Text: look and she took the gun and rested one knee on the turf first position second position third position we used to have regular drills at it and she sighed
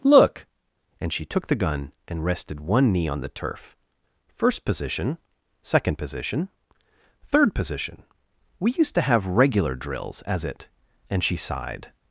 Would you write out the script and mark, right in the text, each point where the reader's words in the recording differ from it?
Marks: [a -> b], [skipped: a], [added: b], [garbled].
look and she took the gun and rested one knee on the turf first position second position third position we used to have regular drills [at -> as] it and she sighed